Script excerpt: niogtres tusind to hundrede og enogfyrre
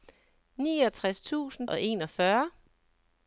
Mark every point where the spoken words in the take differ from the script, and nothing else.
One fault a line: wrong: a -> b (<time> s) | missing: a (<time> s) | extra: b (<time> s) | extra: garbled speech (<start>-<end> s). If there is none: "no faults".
missing: to hundrede (1.7 s)